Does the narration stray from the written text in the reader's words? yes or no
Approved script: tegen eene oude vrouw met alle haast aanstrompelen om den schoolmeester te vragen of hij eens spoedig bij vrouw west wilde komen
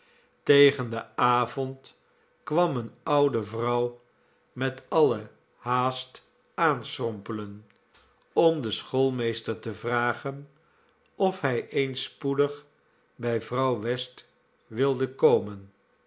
yes